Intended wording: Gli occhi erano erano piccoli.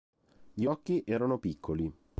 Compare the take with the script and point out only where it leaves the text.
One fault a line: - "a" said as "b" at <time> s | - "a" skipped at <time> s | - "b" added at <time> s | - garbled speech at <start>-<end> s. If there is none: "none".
- "erano" skipped at 1.4 s